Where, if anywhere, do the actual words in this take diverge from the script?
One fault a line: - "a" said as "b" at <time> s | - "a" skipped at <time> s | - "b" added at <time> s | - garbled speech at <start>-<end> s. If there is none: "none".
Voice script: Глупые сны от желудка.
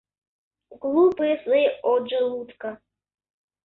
none